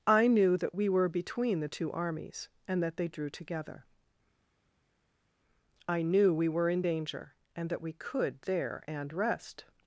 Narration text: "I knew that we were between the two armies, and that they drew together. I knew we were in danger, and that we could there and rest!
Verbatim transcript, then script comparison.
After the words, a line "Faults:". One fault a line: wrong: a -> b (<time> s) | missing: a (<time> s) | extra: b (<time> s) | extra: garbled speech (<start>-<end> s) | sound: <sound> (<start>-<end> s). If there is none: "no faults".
"I knew that we were between the two armies, and that they drew together. I knew we were in danger, and that we could there and rest!
Faults:
no faults